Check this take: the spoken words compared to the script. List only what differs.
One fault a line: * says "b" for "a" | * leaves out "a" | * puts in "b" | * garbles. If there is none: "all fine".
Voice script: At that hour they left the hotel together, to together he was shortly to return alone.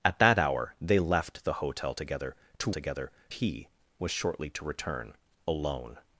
all fine